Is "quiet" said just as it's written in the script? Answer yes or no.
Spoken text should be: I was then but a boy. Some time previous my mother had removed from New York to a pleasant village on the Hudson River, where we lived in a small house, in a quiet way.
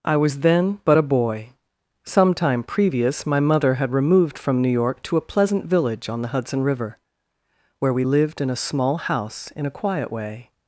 yes